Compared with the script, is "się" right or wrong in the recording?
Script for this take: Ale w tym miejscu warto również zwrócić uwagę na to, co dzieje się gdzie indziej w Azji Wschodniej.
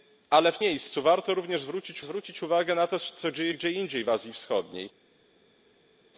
wrong